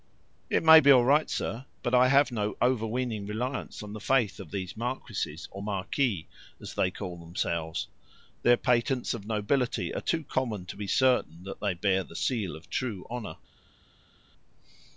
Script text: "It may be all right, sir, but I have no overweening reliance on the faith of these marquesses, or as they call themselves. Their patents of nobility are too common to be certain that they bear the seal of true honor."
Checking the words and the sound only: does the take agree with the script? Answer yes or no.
no